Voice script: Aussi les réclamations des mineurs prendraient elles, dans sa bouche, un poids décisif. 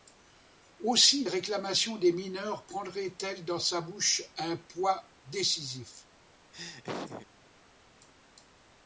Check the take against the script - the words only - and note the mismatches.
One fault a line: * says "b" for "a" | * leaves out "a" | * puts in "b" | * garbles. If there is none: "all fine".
* leaves out "les"